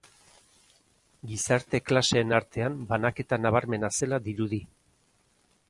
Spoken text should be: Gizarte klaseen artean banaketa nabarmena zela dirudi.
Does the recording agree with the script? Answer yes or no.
yes